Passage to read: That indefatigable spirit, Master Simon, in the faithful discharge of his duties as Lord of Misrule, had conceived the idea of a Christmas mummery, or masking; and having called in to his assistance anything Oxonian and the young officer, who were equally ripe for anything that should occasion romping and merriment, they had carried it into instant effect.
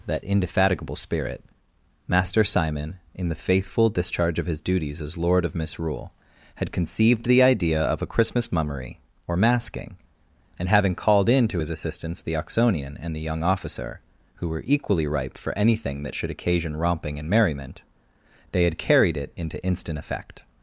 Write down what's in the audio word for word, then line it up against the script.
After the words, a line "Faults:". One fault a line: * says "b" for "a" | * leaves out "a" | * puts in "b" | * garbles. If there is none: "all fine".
That indefatigable spirit, Master Simon, in the faithful discharge of his duties as Lord of Misrule, had conceived the idea of a Christmas mummery, or masking; and having called in to his assistance the Oxonian and the young officer, who were equally ripe for anything that should occasion romping and merriment, they had carried it into instant effect.
Faults:
* says "the" for "anything"